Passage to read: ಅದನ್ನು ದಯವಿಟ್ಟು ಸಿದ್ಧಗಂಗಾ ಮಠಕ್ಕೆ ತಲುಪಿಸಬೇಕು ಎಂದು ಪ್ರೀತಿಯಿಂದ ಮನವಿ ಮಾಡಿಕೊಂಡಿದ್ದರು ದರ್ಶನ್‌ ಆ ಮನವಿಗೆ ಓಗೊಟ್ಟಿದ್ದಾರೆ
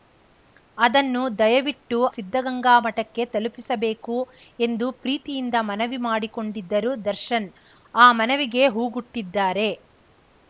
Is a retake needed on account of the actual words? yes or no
no